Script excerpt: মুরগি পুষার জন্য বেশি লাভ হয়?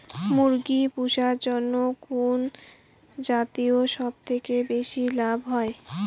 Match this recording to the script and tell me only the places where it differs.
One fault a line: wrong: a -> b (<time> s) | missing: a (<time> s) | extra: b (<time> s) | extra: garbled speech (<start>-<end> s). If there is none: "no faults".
extra: কুন জাতীয় সবথেকে (2.0 s)